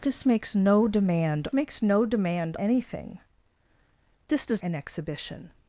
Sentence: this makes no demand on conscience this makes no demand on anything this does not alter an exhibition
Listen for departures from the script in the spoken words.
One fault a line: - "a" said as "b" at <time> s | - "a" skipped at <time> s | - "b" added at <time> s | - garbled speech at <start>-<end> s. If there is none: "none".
- "on conscience this" skipped at 1.5 s
- "on" skipped at 2.6 s
- "not alter" skipped at 4.6 s